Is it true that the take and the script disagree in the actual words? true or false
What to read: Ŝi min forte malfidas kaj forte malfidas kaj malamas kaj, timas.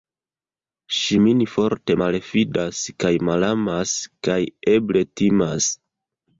true